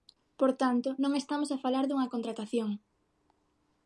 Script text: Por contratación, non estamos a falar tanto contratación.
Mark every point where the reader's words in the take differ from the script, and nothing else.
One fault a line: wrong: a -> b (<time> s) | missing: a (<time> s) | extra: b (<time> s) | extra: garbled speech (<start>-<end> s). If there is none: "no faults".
wrong: contratación -> tanto (0.6 s)
wrong: tanto -> dunha (1.9 s)